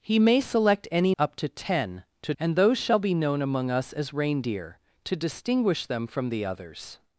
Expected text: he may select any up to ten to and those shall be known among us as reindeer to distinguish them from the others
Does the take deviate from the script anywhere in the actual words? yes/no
no